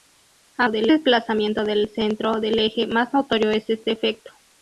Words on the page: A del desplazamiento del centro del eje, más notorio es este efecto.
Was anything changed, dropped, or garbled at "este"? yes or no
no